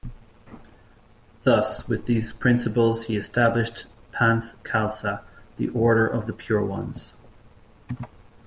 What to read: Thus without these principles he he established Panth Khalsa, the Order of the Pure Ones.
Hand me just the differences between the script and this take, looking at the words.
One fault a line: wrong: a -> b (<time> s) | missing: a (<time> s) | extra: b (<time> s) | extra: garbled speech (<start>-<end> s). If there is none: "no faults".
wrong: without -> with (1.9 s)
missing: he (3.1 s)